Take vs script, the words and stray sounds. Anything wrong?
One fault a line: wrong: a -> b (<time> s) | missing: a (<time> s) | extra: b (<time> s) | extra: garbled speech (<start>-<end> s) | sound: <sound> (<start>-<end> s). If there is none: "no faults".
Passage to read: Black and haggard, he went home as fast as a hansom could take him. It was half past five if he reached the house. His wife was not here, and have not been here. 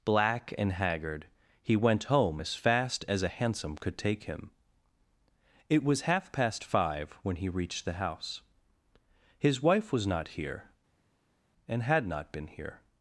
wrong: if -> when (7.2 s)
wrong: have -> had (11.8 s)